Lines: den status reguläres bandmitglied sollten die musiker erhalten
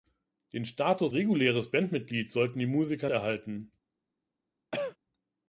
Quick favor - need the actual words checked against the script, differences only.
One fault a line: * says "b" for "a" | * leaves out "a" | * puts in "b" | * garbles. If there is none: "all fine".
all fine